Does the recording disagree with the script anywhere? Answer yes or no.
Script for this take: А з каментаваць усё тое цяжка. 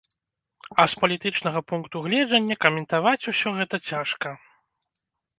yes